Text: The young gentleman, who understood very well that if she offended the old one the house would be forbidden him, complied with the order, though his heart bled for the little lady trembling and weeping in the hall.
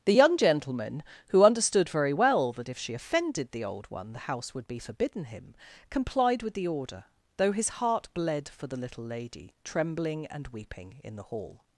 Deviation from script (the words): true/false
false